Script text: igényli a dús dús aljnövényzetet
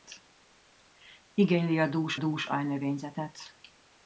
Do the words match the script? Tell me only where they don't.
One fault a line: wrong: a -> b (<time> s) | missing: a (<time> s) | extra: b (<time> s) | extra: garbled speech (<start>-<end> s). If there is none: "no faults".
no faults